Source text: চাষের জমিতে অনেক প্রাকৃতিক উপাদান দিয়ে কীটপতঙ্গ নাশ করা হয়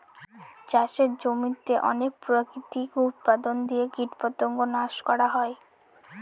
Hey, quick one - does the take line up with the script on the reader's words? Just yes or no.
yes